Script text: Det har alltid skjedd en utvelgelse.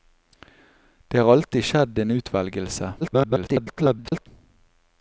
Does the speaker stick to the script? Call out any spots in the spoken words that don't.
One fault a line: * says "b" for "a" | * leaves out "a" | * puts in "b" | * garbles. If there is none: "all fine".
* garbles